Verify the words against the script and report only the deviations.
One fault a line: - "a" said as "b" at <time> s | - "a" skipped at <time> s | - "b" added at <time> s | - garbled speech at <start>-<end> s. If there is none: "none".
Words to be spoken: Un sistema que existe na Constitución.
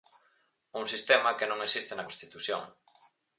- "non" added at 1.5 s